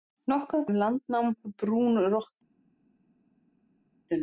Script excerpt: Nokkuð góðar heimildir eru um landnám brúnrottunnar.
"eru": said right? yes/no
no